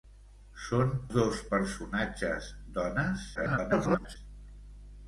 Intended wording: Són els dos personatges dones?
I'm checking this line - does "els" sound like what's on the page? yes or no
no